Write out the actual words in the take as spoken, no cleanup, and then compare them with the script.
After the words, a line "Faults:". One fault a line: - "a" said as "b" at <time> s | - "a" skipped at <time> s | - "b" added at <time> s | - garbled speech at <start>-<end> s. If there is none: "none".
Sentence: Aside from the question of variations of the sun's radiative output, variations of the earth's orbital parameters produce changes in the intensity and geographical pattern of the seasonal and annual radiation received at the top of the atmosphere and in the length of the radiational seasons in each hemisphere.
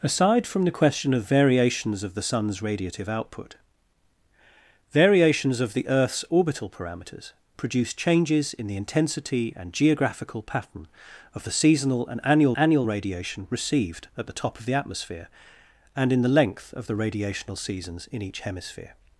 Aside from the question of variations of the sun's radiative output, variations of the earth's orbital parameters produce changes in the intensity and geographical pattern of the seasonal and annual annual radiation received at the top of the atmosphere and in the length of the radiational seasons in each hemisphere.
Faults:
- "annual" added at 12.5 s